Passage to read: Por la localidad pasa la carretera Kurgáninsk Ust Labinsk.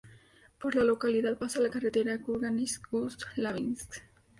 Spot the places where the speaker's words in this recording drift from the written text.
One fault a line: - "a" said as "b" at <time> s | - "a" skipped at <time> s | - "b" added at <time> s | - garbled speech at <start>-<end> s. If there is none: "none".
none